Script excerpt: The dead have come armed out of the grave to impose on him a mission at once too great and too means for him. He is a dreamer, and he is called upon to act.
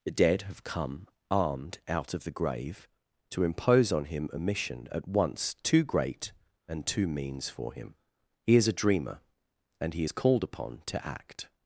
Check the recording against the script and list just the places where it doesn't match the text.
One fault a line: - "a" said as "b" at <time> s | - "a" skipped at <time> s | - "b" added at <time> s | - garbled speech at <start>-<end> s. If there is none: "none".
none